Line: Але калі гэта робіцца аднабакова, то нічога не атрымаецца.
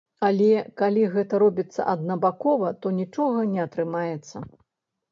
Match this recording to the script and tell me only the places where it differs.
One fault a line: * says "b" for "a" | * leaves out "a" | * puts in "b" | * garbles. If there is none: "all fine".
all fine